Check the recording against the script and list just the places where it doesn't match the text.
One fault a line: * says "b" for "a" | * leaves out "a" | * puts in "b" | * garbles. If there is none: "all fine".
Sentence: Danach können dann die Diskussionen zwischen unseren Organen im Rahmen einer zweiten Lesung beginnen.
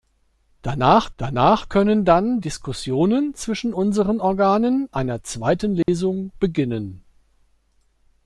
* puts in "danach"
* leaves out "die"
* leaves out "im Rahmen"